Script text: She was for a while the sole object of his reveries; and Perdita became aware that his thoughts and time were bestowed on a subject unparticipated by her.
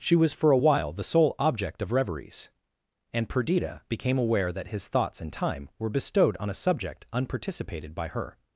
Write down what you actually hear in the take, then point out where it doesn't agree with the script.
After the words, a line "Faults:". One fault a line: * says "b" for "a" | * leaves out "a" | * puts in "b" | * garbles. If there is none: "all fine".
She was for a while the sole object of reveries; and Perdita became aware that his thoughts and time were bestowed on a subject unparticipated by her.
Faults:
* leaves out "his"